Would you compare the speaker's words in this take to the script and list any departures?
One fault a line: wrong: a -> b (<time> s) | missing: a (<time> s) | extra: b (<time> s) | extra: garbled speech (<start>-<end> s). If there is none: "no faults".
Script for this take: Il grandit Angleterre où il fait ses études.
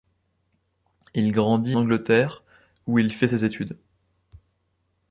no faults